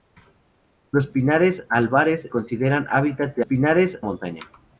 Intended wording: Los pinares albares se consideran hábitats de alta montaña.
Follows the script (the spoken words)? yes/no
no